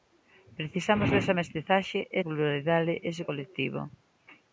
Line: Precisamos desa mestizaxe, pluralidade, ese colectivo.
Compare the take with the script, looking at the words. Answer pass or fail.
pass